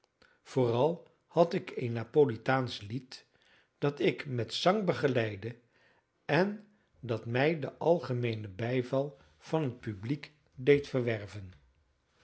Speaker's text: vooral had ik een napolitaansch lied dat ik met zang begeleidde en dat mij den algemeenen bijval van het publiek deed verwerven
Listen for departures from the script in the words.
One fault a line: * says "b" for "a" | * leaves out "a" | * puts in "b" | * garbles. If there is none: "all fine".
all fine